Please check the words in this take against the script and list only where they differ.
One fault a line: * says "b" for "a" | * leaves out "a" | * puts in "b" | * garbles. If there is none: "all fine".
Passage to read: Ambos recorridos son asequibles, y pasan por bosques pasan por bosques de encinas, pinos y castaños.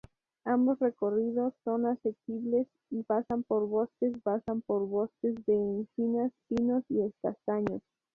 all fine